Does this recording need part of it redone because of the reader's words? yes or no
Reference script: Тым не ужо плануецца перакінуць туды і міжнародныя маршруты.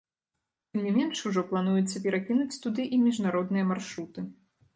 yes